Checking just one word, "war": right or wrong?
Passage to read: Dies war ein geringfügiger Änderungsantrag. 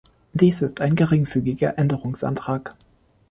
wrong